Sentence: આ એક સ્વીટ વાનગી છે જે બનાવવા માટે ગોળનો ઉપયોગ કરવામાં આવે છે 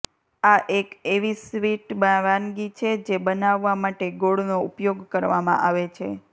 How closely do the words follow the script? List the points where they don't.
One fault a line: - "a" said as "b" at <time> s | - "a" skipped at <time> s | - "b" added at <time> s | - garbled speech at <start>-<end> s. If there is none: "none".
- "એવી" added at 1.1 s